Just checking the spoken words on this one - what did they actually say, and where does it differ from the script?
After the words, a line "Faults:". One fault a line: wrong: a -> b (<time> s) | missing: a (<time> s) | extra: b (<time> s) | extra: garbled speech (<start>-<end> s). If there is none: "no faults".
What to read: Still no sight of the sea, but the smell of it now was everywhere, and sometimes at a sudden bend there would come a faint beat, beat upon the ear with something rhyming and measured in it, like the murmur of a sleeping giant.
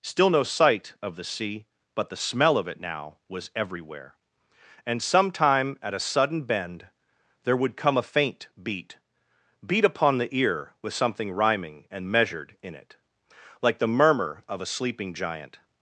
Still no sight of the sea, but the smell of it now was everywhere, and sometime at a sudden bend there would come a faint beat, beat upon the ear with something rhyming and measured in it, like the murmur of a sleeping giant.
Faults:
wrong: sometimes -> sometime (5.0 s)